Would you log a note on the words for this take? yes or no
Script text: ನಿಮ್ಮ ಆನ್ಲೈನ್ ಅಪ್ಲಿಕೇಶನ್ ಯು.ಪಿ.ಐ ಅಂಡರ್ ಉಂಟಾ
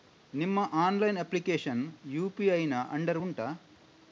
yes